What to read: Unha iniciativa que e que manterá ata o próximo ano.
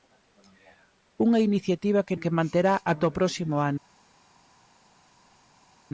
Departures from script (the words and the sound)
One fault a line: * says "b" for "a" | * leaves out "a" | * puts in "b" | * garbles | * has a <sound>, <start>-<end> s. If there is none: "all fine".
all fine